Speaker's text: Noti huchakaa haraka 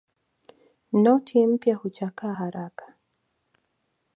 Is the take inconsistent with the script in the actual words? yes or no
yes